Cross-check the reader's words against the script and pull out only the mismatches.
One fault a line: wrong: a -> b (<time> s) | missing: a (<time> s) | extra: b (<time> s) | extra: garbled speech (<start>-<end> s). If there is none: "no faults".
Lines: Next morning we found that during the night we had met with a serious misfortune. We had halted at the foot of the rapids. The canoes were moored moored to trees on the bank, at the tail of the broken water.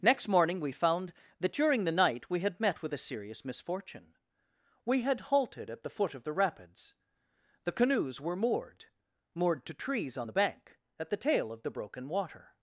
no faults